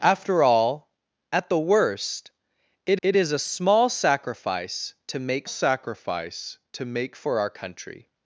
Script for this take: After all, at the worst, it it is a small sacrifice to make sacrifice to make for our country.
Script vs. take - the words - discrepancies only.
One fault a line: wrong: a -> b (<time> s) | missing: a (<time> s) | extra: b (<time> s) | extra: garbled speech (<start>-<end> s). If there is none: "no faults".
no faults